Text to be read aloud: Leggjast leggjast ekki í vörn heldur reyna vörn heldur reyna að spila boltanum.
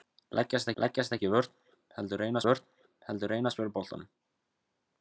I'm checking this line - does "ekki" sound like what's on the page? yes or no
yes